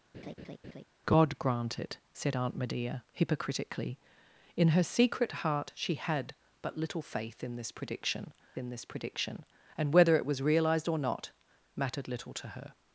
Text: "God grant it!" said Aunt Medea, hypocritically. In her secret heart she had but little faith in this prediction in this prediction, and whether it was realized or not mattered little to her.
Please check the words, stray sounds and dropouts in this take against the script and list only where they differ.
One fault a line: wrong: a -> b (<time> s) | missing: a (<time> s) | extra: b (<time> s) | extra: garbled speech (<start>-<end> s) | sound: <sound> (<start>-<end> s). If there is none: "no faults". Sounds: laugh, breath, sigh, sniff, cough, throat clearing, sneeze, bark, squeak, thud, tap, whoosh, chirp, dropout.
sound: laugh (0.1-0.8 s)